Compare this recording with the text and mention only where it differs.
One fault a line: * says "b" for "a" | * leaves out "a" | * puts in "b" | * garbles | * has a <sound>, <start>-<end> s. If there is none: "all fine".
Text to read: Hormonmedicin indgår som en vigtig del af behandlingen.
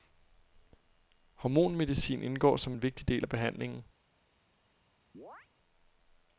* has a chirp, 5.1-5.5 s